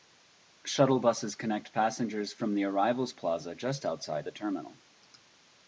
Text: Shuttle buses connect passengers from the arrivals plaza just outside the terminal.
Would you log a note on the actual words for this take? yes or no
no